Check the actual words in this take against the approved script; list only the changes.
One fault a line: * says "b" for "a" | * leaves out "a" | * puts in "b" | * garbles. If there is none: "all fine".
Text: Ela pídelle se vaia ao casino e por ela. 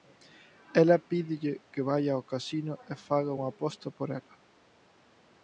* says "que" for "se"
* puts in "faga unha aposta"